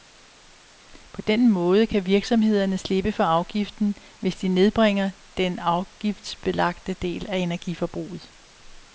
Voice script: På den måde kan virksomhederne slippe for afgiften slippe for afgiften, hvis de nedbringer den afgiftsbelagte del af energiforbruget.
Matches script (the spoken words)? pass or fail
fail